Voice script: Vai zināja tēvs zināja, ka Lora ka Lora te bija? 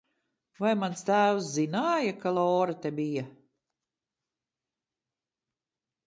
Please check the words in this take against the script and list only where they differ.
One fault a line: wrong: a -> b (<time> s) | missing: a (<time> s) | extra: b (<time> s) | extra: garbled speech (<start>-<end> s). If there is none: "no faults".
wrong: zināja -> mans (0.8 s)
missing: ka Lora (2.7 s)